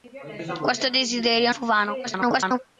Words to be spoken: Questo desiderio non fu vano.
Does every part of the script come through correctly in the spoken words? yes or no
no